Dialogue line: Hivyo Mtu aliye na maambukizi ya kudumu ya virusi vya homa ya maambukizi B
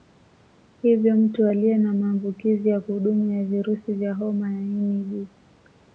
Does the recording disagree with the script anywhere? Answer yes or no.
yes